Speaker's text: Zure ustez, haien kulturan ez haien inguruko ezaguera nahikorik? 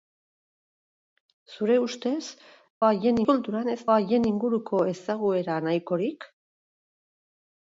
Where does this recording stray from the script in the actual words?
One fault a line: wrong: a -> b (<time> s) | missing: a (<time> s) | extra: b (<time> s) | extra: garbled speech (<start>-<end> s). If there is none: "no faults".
no faults